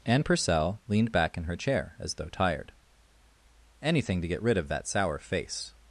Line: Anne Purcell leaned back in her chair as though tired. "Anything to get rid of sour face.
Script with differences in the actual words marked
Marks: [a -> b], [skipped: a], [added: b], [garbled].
Anne Purcell leaned back in her chair as though tired. "Anything to get rid of [added: that] sour face.